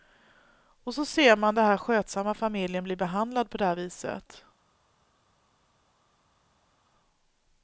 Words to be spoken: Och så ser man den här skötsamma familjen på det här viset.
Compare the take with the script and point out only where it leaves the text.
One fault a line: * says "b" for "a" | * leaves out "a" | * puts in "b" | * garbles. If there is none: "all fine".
* puts in "bli behandlad"